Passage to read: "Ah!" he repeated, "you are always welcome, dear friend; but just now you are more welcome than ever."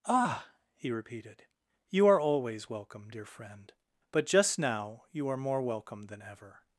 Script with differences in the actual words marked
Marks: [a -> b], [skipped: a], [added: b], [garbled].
"Ah!" he repeated, "you are always welcome, dear friend; but just now you are more welcome than ever."